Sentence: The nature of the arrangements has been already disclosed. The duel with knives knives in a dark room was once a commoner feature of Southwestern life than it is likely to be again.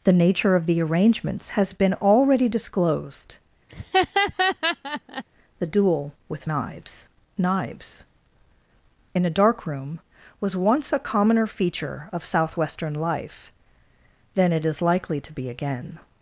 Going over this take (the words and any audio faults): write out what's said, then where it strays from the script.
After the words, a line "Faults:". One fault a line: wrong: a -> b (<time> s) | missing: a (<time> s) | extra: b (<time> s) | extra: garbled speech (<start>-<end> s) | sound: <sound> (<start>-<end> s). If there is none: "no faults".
The nature of the arrangements has been already disclosed. The duel with knives knives in a dark room was once a commoner feature of Southwestern life than it is likely to be again.
Faults:
sound: laugh (3.7-5.2 s)